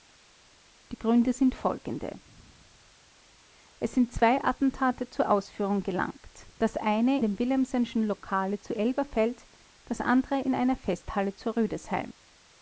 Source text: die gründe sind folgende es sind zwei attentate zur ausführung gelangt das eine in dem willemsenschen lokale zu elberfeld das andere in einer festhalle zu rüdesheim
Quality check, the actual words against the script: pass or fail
fail